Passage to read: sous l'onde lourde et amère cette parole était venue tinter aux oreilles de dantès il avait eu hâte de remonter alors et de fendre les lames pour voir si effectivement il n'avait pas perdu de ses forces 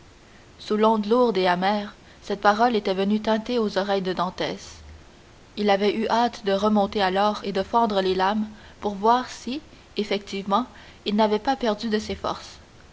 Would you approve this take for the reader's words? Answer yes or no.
yes